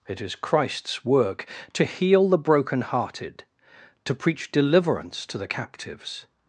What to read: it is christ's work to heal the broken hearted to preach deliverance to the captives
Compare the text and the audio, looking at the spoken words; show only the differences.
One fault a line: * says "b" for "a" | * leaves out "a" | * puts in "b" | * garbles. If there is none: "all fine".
all fine